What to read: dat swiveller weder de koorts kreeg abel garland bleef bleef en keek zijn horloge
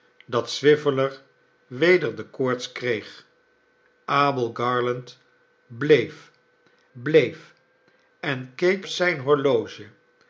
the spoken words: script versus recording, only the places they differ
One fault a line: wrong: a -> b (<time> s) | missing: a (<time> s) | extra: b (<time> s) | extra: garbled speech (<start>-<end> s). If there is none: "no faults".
no faults